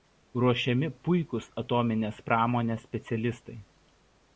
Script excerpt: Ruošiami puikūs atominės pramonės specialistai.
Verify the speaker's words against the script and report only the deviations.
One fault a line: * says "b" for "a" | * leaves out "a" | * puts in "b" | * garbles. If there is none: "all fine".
all fine